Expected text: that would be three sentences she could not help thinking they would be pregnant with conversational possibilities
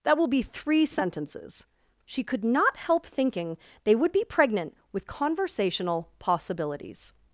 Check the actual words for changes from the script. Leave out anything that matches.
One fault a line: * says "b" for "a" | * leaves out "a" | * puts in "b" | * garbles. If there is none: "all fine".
* says "will" for "would"